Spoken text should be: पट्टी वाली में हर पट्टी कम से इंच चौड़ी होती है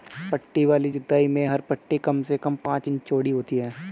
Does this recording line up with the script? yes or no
no